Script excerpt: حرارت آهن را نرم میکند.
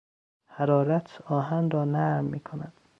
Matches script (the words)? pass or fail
pass